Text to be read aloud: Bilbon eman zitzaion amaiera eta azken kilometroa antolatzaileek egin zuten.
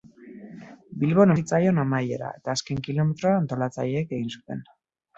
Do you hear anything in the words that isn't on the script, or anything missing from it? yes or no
yes